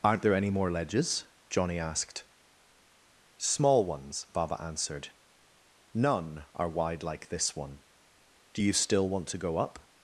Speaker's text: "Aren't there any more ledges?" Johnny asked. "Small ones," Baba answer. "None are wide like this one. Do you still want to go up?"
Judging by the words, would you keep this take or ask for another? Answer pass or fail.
fail